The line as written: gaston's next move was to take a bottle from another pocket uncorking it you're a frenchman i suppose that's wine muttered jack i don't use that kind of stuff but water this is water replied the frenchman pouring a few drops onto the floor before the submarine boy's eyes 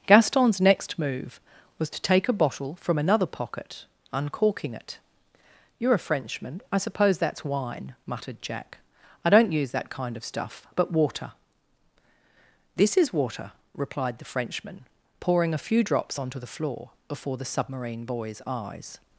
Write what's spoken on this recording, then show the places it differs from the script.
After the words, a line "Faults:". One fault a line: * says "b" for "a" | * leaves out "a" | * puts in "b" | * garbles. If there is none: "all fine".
gaston's next move was to take a bottle from another pocket uncorking it you're a frenchman i suppose that's wine muttered jack i don't use that kind of stuff but water this is water replied the frenchman pouring a few drops onto the floor before the submarine boy's eyes
Faults:
all fine